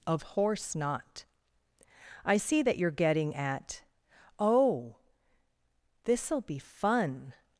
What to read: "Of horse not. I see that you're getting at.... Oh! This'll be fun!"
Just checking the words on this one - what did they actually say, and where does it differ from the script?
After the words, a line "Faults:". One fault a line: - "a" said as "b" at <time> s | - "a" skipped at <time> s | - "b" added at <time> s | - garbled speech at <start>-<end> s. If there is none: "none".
"Of horse not. I see that you're getting at.... Oh! This'll be fun!"
Faults:
none